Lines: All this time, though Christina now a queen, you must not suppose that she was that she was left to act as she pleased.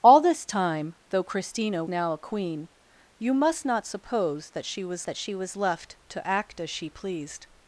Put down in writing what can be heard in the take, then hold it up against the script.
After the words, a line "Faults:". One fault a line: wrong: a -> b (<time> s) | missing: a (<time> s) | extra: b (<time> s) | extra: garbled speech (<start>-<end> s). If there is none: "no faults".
All this time, though Christina now a queen, you must not suppose that she was that she was left to act as she pleased.
Faults:
no faults